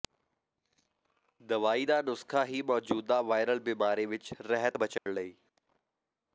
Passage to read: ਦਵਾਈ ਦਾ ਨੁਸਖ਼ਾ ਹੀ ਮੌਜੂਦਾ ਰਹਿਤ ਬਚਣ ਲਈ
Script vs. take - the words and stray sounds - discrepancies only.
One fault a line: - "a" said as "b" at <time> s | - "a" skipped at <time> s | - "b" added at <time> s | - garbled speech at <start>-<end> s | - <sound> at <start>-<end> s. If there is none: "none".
- "ਵਾਇਰਲ ਬਿਮਾਰੀ ਵਿਚ" added at 3.2 s
- dropout at 5.0-5.1 s